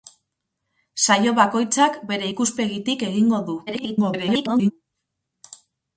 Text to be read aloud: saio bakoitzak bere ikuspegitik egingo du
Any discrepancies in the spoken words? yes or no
yes